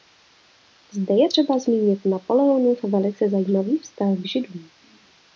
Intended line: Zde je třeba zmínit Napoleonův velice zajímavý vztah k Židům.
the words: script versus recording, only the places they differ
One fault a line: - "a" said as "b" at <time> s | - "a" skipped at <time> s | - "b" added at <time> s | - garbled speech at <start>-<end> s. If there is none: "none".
none